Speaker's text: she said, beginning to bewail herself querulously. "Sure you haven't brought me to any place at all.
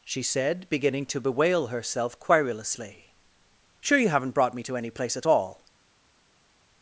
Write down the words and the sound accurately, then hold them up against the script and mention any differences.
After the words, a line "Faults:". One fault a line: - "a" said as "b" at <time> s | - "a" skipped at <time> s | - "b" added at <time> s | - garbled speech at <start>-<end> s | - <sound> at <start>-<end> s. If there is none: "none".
she said, beginning to bewail herself querulously. "Sure you haven't brought me to any place at all.
Faults:
none